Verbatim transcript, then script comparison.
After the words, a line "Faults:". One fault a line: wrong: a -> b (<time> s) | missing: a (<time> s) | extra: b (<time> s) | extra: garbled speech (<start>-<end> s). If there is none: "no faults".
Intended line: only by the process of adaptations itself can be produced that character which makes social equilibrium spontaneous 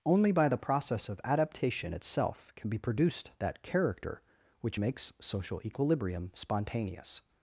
only by the process of adaptation itself can be produced that character which makes social equilibrium spontaneous
Faults:
wrong: adaptations -> adaptation (1.2 s)